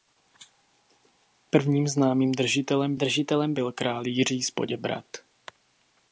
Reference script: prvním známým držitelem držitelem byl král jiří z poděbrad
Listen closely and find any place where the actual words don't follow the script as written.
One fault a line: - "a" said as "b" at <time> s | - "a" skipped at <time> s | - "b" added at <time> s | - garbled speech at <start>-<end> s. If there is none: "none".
none